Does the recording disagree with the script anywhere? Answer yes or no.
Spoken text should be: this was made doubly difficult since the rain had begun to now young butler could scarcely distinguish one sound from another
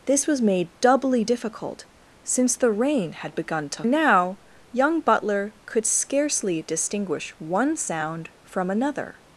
no